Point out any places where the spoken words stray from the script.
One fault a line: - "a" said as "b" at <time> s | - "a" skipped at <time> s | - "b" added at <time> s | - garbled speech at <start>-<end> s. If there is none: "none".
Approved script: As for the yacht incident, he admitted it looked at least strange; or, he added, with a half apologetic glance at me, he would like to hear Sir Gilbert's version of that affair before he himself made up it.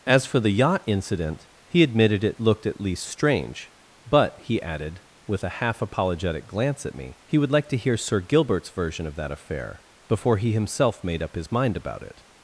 - "or" said as "but" at 4.1 s
- "his mind about" added at 11.4 s